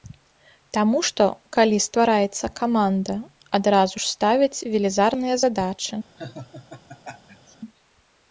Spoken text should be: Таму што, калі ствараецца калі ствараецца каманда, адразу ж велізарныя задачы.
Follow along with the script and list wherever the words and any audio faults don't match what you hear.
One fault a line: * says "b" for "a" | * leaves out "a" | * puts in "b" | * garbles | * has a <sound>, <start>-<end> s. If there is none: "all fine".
* leaves out "калі ствараецца"
* puts in "ставяць"
* has a laugh, 6.2-7.6 s